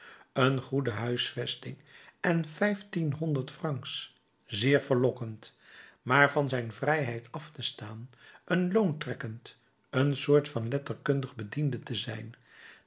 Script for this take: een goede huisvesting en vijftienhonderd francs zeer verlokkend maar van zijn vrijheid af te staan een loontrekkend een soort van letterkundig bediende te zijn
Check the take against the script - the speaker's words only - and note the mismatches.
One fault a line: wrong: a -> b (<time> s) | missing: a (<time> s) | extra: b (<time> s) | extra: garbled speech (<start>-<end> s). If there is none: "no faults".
no faults